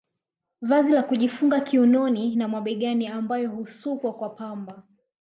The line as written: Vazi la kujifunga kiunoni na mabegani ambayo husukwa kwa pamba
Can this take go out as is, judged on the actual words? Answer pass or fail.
pass